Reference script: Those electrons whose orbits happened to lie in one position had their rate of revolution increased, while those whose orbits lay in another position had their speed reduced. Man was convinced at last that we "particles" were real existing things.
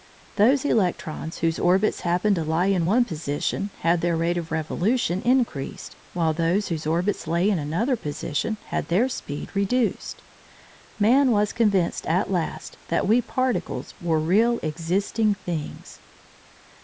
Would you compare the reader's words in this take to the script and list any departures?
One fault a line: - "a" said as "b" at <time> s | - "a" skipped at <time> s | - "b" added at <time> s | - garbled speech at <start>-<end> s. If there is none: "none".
none